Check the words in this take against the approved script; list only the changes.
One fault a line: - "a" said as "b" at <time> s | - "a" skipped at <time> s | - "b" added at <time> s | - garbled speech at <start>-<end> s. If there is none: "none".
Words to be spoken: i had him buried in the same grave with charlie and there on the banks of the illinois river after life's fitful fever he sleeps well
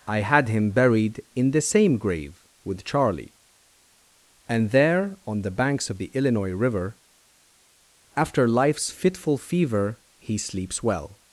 none